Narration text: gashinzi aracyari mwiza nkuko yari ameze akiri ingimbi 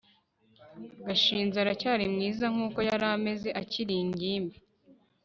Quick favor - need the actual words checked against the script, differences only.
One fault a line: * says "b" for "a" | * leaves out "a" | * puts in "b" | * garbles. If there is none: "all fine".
all fine